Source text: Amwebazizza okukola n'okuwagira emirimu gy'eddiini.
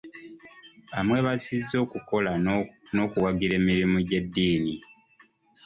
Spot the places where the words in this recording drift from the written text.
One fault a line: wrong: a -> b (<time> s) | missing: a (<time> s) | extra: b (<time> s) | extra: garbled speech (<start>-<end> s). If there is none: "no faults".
no faults